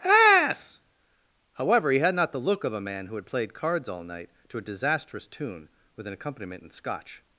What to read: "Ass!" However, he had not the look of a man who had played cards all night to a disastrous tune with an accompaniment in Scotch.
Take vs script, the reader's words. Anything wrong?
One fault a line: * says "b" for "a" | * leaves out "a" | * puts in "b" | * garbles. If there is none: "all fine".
all fine